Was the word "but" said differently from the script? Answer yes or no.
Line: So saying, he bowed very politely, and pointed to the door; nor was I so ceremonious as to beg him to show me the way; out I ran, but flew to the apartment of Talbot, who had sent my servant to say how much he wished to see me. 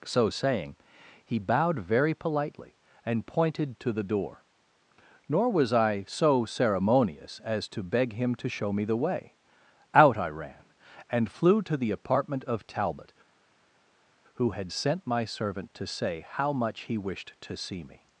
yes